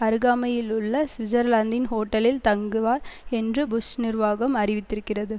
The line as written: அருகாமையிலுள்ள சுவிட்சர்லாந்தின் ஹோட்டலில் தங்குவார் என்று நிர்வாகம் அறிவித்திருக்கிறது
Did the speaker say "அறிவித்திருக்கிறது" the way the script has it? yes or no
yes